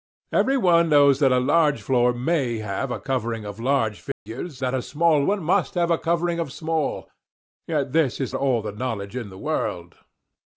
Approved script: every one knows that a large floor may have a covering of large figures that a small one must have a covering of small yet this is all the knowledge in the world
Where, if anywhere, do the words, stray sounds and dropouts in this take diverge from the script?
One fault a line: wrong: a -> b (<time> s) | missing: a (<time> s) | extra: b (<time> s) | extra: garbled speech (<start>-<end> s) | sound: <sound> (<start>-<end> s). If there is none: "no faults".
sound: dropout (4.1-4.3 s)